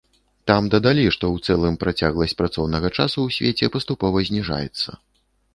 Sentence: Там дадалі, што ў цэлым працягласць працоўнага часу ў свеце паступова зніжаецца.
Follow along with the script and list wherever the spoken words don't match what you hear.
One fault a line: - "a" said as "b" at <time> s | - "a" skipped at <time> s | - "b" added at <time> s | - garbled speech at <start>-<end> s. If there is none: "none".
none